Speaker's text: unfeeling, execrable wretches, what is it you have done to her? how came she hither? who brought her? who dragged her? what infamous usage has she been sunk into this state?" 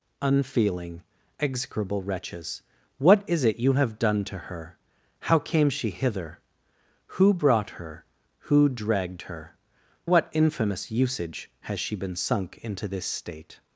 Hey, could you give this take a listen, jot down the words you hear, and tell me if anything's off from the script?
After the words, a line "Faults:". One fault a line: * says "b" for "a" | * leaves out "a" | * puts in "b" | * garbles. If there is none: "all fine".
unfeeling, execrable wretches, what is it you have done to her? how came she hither? who brought her? who dragged her? what infamous usage has she been sunk into this state?"
Faults:
all fine